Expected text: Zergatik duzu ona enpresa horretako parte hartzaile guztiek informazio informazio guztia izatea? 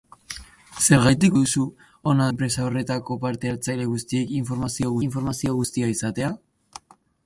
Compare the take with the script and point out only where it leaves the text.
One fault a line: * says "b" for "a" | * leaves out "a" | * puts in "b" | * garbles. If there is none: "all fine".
all fine